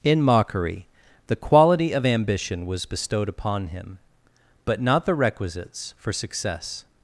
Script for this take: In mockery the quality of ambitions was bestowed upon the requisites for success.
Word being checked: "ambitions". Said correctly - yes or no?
no